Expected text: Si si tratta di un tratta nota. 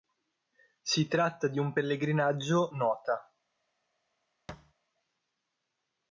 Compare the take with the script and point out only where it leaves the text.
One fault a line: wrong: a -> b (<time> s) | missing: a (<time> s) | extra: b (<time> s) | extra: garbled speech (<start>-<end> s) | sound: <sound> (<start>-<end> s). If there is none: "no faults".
missing: si (1.1 s)
wrong: tratta -> pellegrinaggio (1.7 s)
sound: thud (4.5-4.7 s)